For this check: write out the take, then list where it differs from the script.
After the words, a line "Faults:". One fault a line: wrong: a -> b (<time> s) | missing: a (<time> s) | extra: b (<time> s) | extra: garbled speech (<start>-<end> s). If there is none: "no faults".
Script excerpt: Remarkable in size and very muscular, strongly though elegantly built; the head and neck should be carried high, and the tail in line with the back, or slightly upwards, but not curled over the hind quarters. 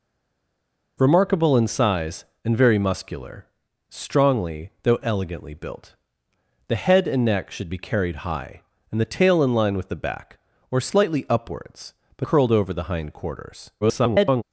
Remarkable in size and very muscular, strongly though elegantly built; the head and neck should be carried high, and the tail in line with the back, or slightly upwards, but curled over the hind quarters. [garbled]
Faults:
missing: not (12.3 s)
extra: garbled speech (13.8-14.4 s)